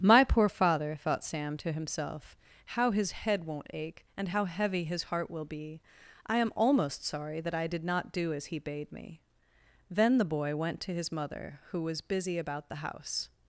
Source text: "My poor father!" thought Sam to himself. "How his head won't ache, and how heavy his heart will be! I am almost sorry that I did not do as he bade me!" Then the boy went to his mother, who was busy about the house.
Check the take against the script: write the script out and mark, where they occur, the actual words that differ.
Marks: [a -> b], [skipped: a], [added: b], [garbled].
"My poor father!" thought Sam to himself. "How his head won't ache, and how heavy his heart will be! I am almost sorry that I did not do as he bade me!" Then the boy went to his mother, who was busy about the house.